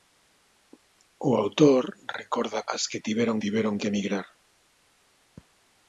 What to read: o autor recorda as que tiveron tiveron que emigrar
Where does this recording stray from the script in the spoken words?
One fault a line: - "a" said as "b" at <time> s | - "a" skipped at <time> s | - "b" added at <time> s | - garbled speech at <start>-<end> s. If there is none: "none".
none